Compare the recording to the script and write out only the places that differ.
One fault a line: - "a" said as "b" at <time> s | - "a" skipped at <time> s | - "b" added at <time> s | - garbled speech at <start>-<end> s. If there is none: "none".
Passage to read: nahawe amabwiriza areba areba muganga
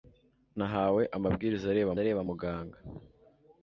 none